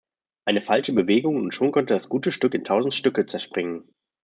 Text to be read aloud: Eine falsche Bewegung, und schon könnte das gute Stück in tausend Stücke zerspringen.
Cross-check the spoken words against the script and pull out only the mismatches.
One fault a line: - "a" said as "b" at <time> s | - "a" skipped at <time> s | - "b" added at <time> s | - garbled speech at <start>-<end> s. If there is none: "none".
none